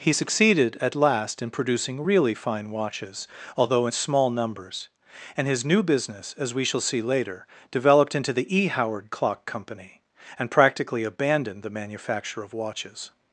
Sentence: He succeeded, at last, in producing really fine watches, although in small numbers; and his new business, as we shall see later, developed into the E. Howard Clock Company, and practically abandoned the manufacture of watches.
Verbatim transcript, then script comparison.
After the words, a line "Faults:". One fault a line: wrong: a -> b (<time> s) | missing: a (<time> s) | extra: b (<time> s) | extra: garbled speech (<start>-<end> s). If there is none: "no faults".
He succeeded, at last, in producing really fine watches, although in small numbers; and his new business, as we shall see later, developed into the E. Howard Clock Company, and practically abandoned the manufacture of watches.
Faults:
no faults